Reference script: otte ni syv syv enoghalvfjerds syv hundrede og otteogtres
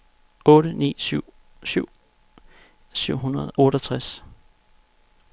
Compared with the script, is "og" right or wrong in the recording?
wrong